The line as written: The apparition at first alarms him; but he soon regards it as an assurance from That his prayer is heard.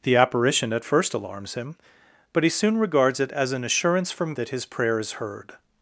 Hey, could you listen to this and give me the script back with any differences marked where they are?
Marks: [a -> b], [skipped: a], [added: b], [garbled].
The apparition at first alarms him; but he soon regards it as an assurance from That his prayer is heard.